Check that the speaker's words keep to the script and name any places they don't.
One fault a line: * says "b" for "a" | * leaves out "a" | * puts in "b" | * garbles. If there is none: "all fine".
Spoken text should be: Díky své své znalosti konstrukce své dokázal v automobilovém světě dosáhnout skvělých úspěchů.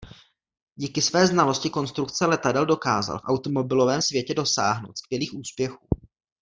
* leaves out "své"
* says "letadel" for "své"